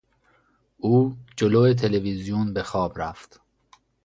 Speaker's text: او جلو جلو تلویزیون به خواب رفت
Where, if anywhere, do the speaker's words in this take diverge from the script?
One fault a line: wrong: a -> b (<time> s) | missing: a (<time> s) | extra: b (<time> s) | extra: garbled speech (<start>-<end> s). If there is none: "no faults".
missing: جلو (1.7 s)